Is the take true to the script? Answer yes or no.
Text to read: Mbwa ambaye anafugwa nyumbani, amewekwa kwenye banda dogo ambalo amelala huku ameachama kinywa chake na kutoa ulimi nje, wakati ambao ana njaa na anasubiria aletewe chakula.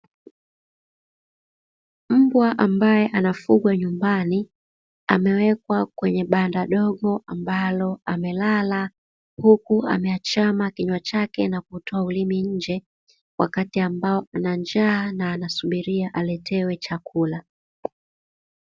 yes